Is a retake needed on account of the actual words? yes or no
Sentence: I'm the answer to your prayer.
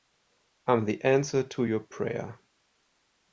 no